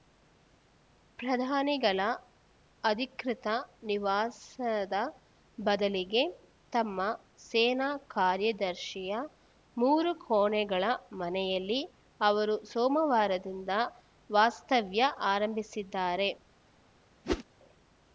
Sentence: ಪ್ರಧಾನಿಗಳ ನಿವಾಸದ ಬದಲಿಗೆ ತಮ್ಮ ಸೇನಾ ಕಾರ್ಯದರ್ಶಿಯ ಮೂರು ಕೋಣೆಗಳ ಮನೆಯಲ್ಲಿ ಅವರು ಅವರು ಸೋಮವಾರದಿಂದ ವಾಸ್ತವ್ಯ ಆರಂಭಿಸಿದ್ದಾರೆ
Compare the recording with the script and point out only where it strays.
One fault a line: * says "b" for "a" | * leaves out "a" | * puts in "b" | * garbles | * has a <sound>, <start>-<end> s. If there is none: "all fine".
* puts in "ಅಧಿಕೃತ"
* leaves out "ಅವರು"
* has a whoosh, 17.2-17.4 s